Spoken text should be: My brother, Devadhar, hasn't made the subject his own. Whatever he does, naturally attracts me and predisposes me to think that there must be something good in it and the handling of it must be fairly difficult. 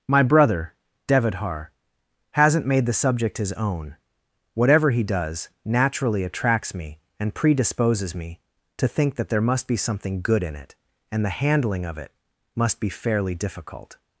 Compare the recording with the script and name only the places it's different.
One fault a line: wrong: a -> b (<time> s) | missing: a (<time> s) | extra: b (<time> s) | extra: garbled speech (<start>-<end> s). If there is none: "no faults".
no faults